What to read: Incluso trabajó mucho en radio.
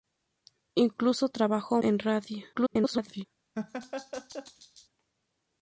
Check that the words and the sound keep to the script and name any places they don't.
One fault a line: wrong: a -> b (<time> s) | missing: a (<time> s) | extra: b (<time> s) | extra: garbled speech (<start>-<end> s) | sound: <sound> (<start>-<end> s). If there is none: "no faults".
missing: mucho (1.8 s)
extra: garbled speech (2.5-3.3 s)
sound: laugh (3.5-4.9 s)